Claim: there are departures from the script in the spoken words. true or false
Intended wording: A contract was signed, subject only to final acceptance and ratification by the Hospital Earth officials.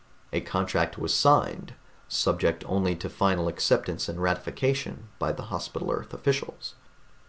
false